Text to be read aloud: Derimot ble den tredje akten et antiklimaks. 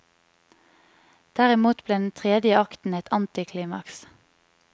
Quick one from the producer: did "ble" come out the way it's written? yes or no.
yes